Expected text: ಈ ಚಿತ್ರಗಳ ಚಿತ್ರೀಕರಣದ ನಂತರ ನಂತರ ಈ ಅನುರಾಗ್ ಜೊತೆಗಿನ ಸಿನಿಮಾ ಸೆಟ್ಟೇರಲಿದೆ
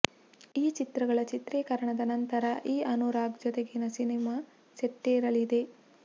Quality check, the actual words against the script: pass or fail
fail